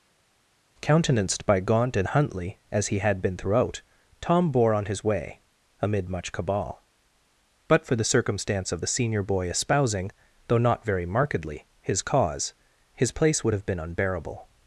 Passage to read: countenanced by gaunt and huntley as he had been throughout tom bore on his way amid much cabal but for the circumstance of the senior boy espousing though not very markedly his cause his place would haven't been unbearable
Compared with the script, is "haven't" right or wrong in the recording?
wrong